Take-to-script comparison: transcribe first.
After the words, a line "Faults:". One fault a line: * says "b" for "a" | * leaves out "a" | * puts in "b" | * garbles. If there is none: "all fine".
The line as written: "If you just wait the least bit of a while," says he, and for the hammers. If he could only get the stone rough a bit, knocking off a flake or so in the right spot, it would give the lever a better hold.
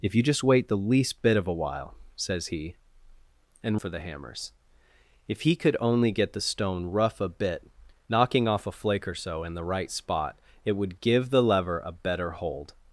"If you just wait the least bit of a while," says he, and for the hammers. If he could only get the stone rough a bit, knocking off a flake or so in the right spot, it would give the lever a better hold.
Faults:
all fine